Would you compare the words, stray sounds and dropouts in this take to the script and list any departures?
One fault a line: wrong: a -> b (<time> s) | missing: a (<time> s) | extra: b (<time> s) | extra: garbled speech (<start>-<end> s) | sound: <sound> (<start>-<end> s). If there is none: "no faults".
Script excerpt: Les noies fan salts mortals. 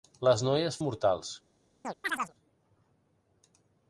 missing: fan salts (0.8 s)
sound: chirp (1.8-2.3 s)